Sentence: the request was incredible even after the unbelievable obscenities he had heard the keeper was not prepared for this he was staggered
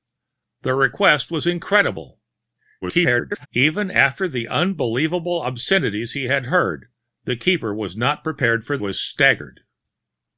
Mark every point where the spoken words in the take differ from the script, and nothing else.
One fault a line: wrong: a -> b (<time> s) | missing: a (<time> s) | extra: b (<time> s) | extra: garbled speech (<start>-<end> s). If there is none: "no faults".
extra: garbled speech (2.8-3.5 s)
missing: this he (8.8 s)